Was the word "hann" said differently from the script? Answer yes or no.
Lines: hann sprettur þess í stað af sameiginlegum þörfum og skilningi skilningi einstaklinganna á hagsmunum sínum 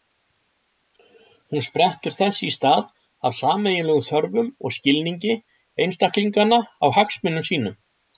yes